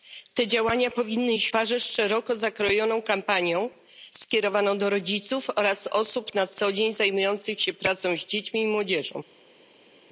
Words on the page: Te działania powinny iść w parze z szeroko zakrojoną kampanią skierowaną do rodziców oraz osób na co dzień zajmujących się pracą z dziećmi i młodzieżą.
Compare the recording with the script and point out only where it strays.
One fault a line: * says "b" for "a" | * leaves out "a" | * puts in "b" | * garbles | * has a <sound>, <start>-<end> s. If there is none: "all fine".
* leaves out "w"